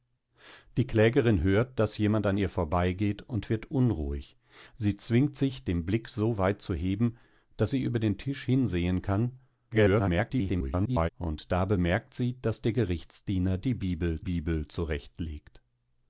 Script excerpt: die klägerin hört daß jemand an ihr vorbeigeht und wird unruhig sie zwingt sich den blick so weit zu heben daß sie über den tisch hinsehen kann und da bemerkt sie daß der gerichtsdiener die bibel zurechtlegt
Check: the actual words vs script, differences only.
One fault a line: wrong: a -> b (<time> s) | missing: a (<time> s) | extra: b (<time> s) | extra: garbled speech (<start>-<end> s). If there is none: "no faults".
extra: garbled speech (9.7-11.1 s)
extra: bibel (14.2 s)